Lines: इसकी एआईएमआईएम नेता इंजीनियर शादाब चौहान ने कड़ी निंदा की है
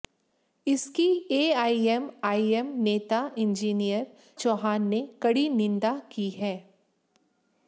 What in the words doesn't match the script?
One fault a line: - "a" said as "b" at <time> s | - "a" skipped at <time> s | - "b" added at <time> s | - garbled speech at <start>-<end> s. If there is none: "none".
- "शादाब" skipped at 4.1 s